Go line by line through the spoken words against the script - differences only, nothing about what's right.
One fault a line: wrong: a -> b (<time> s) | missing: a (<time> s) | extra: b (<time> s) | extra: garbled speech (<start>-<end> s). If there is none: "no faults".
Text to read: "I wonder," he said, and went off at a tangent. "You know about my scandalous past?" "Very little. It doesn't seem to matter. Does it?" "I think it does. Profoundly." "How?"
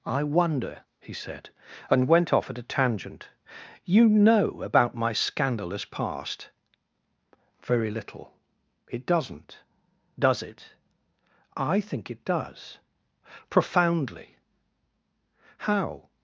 missing: seem to matter (9.6 s)